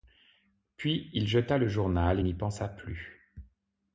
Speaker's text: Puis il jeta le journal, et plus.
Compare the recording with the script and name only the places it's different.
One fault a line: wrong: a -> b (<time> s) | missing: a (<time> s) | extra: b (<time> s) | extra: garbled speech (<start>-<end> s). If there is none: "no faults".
extra: n'y pensa (2.2 s)